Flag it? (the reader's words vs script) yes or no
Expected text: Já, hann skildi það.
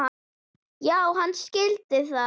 no